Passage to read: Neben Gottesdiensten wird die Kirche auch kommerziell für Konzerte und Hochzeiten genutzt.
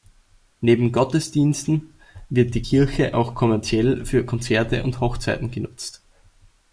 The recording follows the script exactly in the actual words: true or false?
true